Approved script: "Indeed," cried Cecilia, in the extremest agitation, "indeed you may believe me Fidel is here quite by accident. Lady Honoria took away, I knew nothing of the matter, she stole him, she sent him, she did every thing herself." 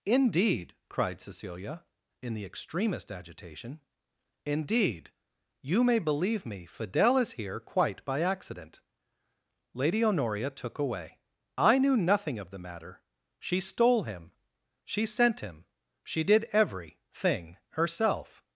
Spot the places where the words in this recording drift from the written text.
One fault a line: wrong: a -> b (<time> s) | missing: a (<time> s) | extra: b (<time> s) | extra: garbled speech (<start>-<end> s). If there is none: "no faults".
no faults